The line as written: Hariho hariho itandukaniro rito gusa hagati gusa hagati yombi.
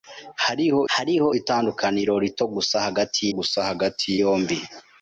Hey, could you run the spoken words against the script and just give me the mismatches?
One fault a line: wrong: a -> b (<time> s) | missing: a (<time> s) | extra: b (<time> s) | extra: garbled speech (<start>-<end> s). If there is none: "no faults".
no faults